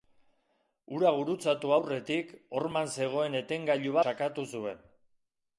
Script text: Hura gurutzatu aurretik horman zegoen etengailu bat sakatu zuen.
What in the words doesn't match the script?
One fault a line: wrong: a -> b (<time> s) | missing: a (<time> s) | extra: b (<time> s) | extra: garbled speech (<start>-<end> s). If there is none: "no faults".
missing: bat (4.0 s)